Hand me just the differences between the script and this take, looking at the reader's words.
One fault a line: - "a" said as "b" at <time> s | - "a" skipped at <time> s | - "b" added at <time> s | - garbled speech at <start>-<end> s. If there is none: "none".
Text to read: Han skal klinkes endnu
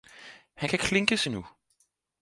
- "skal" said as "kan" at 0.7 s